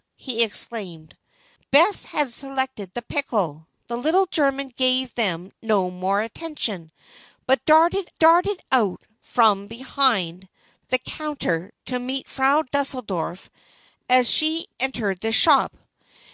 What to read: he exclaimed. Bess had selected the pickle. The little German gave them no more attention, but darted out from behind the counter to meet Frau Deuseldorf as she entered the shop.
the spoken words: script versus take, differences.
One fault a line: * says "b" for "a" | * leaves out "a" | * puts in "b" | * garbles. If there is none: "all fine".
* puts in "darted"